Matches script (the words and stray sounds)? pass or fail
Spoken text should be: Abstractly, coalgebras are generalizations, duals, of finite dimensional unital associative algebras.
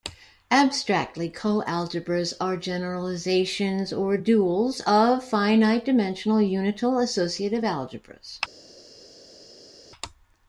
fail